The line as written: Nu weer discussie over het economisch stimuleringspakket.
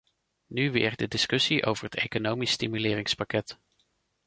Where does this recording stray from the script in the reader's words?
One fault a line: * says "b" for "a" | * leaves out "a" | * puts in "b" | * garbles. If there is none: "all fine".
* puts in "de"